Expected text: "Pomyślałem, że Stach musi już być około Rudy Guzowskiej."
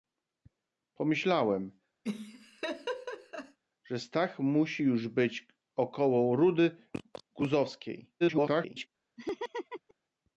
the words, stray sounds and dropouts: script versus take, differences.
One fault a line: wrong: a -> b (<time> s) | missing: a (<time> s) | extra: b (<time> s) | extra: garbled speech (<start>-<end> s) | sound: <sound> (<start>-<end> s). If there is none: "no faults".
sound: laugh (2.0-3.6 s)
extra: garbled speech (8.2-8.9 s)
sound: laugh (9.2-9.9 s)